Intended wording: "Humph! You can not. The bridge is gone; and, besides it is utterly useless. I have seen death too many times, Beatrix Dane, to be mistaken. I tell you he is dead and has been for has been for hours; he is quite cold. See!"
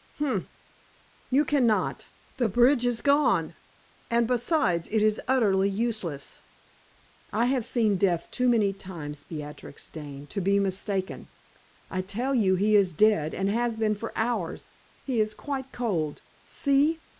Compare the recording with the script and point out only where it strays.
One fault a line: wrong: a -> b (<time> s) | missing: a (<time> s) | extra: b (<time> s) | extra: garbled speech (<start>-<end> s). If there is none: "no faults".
missing: has been for (14.1 s)